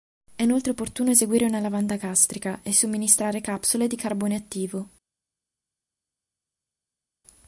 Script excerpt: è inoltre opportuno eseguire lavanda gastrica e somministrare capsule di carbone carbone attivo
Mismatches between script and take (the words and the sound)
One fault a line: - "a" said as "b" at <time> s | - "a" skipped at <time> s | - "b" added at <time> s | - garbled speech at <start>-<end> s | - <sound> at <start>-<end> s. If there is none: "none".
- "una" added at 1.4 s
- "carbone" skipped at 4.4 s